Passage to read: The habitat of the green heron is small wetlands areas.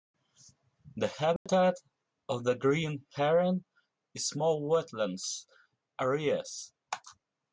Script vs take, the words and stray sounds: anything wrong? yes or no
yes